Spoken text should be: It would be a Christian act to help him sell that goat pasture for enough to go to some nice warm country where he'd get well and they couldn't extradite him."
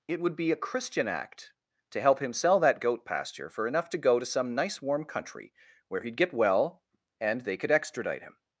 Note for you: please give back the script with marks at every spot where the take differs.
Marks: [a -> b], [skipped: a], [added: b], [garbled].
It would be a Christian act to help him sell that goat pasture for enough to go to some nice warm country where he'd get well and they [couldn't -> could] extradite him."